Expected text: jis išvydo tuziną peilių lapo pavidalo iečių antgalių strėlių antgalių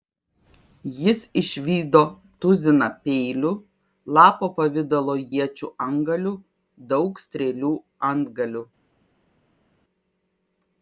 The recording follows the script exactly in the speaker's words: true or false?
false